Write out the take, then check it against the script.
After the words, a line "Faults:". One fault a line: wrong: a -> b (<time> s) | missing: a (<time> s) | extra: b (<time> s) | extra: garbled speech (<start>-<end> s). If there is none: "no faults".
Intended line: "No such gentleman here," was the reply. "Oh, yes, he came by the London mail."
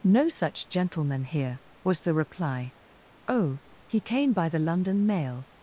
"No such gentleman here," was the reply. "Oh, he came by the London mail."
Faults:
missing: yes (3.6 s)